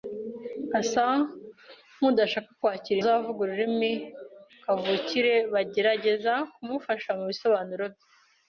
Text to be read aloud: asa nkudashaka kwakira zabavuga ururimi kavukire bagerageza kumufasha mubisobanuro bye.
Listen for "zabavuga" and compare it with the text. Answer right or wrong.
right